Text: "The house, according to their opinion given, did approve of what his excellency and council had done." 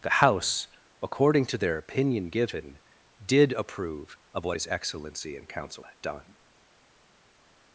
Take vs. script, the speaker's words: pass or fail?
pass